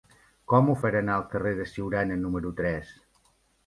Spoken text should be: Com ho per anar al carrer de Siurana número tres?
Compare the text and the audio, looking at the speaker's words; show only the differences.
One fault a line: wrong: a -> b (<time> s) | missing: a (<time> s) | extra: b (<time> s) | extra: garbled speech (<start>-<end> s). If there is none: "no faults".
no faults